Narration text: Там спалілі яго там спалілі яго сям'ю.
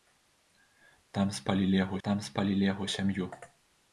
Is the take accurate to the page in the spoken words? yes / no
yes